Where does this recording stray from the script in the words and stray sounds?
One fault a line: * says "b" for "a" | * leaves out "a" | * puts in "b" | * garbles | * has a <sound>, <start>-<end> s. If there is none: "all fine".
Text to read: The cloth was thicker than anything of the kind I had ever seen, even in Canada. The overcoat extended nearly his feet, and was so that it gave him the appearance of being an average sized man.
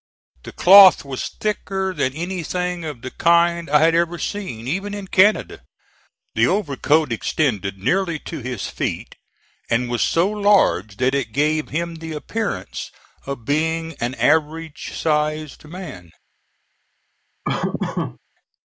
* puts in "to"
* puts in "large"
* has a laugh, 17.4-18.2 s